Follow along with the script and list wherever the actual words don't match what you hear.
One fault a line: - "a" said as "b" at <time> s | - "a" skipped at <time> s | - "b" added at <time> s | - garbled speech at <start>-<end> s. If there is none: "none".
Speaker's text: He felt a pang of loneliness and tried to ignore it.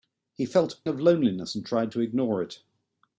- "pang" skipped at 0.9 s